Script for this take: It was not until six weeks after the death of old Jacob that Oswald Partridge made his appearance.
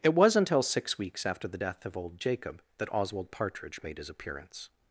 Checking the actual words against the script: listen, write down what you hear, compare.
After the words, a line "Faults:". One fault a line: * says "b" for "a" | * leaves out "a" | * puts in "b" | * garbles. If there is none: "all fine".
It was until six weeks after the death of old Jacob that Oswald Partridge made his appearance.
Faults:
* leaves out "not"